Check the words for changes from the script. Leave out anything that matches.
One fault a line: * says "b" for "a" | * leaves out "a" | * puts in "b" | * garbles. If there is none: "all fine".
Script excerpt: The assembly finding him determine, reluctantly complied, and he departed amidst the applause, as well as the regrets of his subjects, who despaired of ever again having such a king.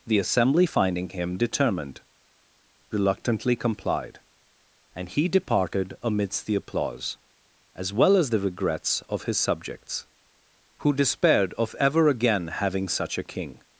* says "determined" for "determine"